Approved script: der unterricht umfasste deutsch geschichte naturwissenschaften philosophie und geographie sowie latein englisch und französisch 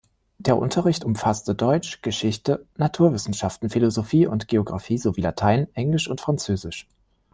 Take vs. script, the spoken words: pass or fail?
pass